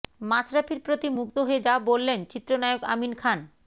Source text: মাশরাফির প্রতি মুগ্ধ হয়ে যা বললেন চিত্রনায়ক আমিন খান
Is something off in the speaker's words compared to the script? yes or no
no